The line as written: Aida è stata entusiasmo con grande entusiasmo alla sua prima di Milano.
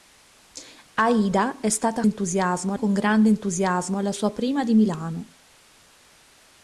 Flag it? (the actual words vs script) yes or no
no